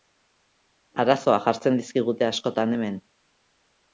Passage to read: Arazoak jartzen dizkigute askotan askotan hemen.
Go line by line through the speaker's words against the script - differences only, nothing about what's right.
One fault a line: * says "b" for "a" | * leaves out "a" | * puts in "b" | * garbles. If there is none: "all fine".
* leaves out "askotan"